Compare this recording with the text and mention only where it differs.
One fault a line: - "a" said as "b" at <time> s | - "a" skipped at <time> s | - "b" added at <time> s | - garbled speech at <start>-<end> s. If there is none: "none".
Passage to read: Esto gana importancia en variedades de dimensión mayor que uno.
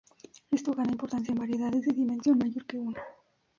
none